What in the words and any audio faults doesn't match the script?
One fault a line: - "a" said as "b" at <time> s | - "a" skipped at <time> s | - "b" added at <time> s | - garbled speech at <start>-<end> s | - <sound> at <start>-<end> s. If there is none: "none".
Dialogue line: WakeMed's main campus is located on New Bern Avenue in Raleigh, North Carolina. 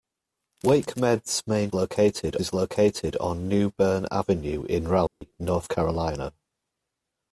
- "campus" said as "located" at 1.7 s
- dropout at 5.1-5.2 s